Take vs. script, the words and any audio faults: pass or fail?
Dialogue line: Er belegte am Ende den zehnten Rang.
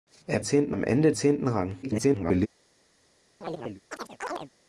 fail